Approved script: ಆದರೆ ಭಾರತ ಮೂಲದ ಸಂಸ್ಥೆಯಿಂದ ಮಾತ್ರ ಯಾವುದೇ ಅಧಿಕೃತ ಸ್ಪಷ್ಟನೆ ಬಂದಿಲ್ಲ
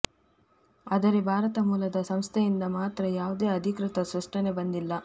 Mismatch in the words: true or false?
false